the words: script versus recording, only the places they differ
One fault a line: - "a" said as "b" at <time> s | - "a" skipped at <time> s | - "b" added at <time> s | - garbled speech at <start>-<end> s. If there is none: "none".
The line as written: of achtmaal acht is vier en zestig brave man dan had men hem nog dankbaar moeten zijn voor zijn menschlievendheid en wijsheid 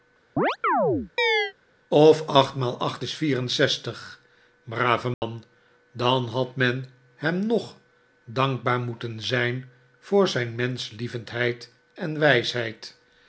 none